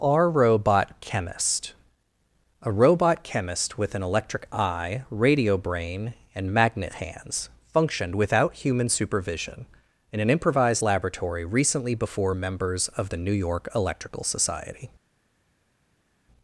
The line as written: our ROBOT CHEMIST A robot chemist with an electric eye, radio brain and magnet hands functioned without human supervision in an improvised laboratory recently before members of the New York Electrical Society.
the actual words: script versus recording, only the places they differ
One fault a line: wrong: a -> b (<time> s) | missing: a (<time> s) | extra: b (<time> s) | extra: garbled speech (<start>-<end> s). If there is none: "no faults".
no faults